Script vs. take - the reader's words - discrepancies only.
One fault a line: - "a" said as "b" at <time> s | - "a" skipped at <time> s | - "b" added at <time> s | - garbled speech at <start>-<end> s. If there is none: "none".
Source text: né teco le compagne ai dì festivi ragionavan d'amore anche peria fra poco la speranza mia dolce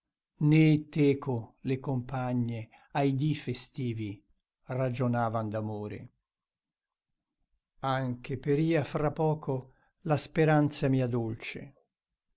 none